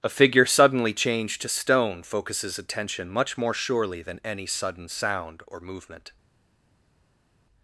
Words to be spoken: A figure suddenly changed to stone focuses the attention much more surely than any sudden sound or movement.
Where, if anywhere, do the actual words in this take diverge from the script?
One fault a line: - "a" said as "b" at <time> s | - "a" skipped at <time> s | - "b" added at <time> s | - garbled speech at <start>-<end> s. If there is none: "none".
- "the" skipped at 2.6 s